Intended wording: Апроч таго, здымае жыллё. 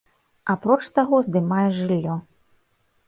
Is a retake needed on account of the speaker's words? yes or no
no